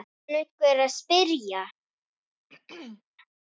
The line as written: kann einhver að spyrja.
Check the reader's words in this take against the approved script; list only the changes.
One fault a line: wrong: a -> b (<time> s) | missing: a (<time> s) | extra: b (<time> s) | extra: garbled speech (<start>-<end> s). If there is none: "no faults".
no faults